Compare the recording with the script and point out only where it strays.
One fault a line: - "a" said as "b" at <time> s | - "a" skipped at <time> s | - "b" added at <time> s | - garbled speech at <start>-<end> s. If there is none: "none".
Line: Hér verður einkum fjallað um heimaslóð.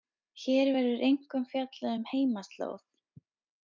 none